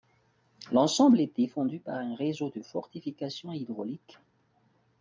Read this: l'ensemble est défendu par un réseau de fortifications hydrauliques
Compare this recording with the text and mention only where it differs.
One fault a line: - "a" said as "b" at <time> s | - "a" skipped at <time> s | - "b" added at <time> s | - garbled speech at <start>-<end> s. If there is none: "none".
none